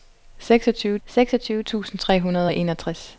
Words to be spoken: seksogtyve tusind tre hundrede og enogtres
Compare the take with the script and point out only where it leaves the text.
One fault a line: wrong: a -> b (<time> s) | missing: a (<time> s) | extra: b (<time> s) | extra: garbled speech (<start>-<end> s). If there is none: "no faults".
extra: seksogtyve (1.1 s)